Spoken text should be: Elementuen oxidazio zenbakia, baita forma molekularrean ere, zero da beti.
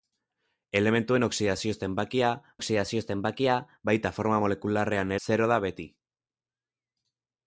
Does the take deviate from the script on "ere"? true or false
true